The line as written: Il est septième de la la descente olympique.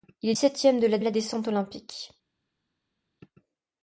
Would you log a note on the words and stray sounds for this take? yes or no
no